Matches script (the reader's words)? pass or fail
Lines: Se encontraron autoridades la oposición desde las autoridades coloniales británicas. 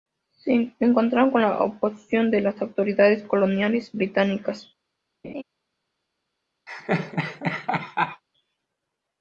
fail